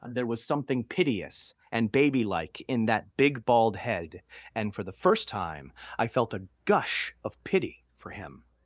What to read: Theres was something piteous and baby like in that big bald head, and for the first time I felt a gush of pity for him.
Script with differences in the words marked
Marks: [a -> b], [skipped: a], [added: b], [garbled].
[Theres -> There] was something piteous and baby like in that big bald head, and for the first time I felt a gush of pity for him.